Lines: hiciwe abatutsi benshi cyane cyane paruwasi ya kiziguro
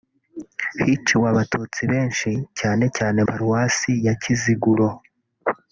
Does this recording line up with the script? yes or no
yes